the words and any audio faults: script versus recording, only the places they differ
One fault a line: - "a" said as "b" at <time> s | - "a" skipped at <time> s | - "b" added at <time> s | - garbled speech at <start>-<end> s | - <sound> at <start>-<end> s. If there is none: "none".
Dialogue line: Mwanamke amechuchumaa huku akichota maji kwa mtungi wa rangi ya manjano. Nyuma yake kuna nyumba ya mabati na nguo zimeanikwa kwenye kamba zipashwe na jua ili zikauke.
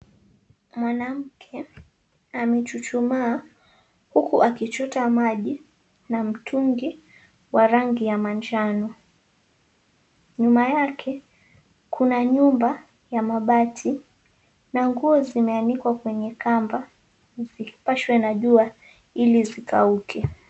- "kwa" said as "na" at 6.1 s